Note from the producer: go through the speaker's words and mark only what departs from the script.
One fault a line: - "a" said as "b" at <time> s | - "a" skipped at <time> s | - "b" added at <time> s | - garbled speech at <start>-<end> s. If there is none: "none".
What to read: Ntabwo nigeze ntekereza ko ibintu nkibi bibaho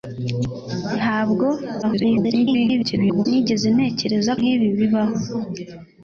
- garbled speech at 1.8-3.3 s
- "ko ibintu" skipped at 4.3 s